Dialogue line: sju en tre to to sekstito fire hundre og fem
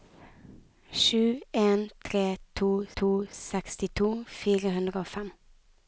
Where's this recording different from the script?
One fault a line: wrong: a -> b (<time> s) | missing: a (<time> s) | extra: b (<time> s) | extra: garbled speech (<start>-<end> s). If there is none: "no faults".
no faults